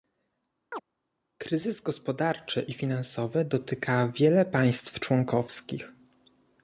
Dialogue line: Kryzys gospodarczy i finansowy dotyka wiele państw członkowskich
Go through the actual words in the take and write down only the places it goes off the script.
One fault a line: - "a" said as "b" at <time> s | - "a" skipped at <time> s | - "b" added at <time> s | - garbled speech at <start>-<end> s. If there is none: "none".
none